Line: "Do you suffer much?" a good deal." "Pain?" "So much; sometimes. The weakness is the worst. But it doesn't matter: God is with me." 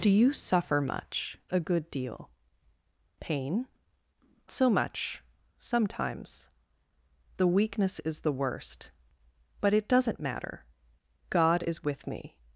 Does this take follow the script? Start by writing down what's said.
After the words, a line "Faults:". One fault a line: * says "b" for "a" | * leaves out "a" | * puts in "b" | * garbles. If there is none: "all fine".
"Do you suffer much?" a good deal." "Pain?" "So much; sometimes. The weakness is the worst. But it doesn't matter: God is with me."
Faults:
all fine